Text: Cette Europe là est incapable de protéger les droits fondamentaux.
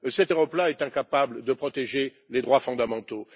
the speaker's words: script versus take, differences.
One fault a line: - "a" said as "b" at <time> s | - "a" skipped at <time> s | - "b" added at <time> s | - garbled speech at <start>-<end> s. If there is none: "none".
none